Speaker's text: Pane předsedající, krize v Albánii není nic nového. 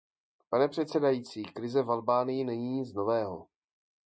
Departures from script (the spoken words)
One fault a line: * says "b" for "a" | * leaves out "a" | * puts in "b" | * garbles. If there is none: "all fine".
all fine